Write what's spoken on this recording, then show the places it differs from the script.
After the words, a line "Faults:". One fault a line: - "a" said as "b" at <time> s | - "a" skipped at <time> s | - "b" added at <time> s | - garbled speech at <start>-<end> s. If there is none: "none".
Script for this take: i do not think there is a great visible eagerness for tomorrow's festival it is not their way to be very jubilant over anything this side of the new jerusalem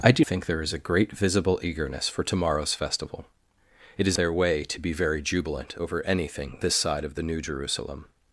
i do think there is a great visible eagerness for tomorrow's festival it is their way to be very jubilant over anything this side of the new jerusalem
Faults:
- "not" skipped at 0.2 s
- "not" skipped at 4.2 s